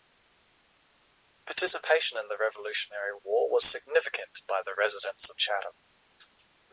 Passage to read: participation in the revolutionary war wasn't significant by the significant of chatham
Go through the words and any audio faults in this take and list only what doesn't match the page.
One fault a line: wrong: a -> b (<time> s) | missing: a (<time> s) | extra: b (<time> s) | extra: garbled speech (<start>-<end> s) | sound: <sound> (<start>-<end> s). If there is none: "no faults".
wrong: wasn't -> was (3.5 s)
wrong: significant -> residents (4.8 s)